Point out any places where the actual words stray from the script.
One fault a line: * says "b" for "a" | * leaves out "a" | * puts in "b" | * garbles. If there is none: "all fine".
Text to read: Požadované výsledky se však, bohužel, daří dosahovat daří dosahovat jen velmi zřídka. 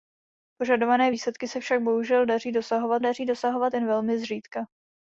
all fine